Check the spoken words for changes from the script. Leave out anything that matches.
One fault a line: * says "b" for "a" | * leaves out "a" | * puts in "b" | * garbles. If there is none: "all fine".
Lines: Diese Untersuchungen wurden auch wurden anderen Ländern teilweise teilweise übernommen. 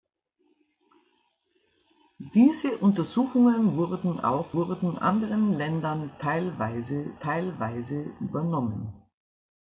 all fine